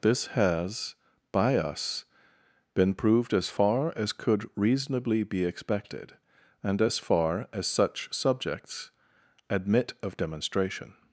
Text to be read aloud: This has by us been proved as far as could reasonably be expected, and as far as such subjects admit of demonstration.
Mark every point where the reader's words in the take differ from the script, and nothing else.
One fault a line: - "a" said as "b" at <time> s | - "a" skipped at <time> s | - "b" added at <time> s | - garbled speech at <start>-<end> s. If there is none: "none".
none